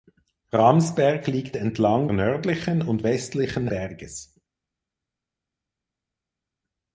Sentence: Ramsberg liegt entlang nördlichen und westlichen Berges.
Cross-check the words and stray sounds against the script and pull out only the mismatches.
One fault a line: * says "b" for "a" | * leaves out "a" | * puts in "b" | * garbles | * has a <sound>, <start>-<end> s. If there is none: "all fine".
all fine